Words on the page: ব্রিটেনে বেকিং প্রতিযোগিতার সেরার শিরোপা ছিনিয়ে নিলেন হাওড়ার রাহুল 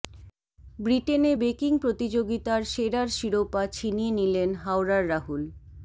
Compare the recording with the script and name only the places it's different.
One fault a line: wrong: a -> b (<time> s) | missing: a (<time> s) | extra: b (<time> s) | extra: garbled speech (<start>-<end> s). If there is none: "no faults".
no faults